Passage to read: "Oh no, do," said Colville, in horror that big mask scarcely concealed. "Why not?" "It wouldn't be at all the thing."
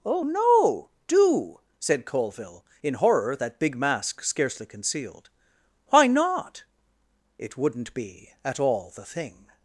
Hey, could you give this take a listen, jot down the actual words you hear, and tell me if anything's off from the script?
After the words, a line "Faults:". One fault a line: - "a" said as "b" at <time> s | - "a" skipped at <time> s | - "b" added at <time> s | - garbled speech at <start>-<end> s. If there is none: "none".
"Oh no, do," said Colville, in horror that big mask scarcely concealed. "Why not?" "It wouldn't be at all the thing."
Faults:
none